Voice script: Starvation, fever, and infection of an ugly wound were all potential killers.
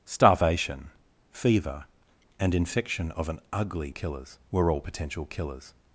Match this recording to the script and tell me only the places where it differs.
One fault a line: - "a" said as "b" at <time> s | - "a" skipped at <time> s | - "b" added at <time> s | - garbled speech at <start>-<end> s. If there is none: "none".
- "wound" said as "killers" at 3.9 s